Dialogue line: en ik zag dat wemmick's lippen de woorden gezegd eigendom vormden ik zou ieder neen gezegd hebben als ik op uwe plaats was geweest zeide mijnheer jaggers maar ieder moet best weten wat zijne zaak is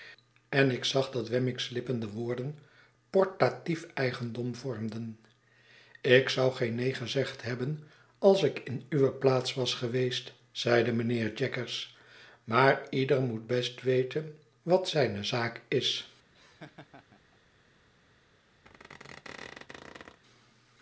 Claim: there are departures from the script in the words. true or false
true